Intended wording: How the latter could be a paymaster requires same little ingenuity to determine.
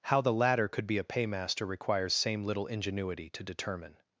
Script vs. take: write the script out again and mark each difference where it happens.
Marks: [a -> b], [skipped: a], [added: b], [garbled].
How the latter could be a paymaster requires same little ingenuity to determine.